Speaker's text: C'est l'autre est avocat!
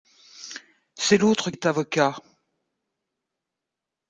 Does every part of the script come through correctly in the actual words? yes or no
yes